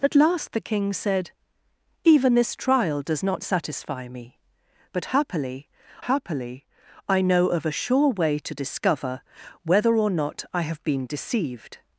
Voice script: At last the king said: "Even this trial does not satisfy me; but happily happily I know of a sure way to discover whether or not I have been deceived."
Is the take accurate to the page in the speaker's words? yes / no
yes